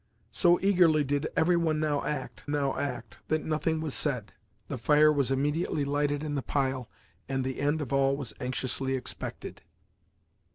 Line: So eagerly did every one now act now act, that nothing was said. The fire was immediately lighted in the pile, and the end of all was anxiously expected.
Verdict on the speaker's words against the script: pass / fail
pass